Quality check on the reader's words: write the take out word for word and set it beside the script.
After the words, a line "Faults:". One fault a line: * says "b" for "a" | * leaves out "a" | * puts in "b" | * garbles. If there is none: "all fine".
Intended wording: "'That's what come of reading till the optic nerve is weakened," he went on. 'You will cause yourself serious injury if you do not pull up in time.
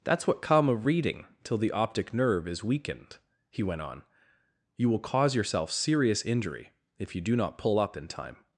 "'That's what come of reading till the optic nerve is weakened," he went on. 'You will cause yourself serious injury if you do not pull up in time.
Faults:
all fine